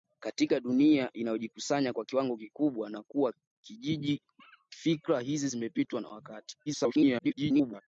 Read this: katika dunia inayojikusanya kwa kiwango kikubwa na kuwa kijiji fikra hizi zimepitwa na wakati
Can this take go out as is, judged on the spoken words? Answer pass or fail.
fail